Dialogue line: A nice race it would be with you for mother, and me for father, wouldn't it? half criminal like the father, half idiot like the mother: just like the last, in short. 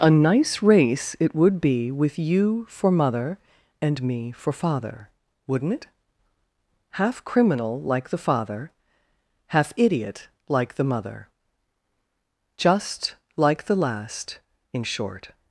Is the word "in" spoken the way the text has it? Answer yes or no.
yes